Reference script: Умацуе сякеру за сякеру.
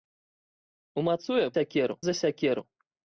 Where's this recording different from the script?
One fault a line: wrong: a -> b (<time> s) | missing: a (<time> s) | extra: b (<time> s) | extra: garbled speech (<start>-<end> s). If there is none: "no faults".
no faults